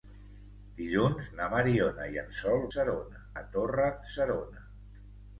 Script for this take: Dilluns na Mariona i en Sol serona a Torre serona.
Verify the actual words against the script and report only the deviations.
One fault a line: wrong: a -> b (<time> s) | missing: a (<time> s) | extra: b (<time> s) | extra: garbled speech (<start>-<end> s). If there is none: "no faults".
no faults